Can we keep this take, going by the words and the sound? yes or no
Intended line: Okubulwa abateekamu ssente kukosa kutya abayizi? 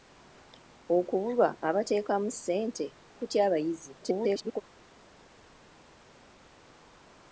no